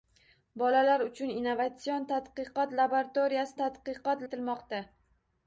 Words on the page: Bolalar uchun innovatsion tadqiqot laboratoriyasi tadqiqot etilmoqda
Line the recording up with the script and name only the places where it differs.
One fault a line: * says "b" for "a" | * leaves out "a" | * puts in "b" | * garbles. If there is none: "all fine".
all fine